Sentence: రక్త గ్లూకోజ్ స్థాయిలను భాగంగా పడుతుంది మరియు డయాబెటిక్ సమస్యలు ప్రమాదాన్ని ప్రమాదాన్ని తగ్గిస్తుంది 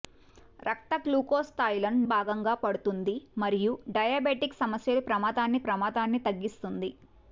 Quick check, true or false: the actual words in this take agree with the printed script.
true